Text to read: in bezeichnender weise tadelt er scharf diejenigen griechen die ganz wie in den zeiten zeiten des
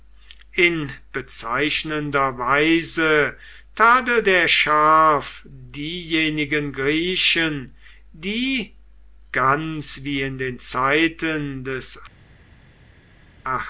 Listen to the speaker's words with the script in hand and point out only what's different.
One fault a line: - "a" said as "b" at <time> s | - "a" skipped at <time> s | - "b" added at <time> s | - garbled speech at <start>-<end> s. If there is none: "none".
- "zeiten" skipped at 11.6 s